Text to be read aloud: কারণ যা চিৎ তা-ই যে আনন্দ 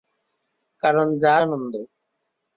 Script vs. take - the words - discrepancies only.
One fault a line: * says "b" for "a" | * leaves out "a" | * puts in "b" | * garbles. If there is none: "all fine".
* leaves out "চিৎ তা-ই যে"